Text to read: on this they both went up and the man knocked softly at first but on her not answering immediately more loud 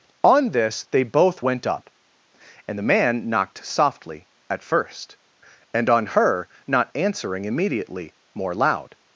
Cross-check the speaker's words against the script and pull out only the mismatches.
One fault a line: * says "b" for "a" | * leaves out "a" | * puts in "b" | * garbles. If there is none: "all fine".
* says "and" for "but"